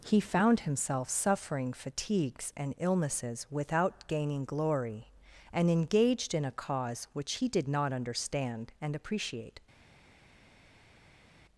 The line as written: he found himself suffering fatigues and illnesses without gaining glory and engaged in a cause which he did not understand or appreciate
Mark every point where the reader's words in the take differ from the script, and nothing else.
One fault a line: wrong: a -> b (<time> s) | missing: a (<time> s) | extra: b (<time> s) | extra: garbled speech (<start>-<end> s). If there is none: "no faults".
wrong: or -> and (8.8 s)